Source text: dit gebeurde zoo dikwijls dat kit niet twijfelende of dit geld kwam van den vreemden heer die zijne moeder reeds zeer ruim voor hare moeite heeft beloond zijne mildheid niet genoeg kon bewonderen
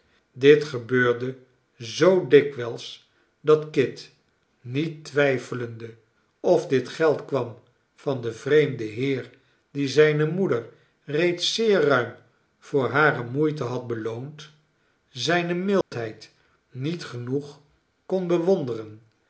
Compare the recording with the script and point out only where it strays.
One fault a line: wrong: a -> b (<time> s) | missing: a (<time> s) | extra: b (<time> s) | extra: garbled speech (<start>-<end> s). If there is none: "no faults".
wrong: heeft -> had (13.6 s)